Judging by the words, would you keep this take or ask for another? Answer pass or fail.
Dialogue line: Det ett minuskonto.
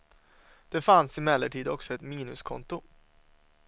fail